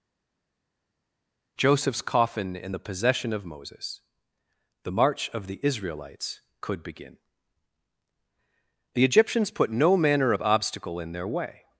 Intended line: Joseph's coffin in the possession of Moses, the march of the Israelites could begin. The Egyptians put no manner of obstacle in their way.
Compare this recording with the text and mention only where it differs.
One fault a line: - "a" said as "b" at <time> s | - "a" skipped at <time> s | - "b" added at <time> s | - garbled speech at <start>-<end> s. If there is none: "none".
none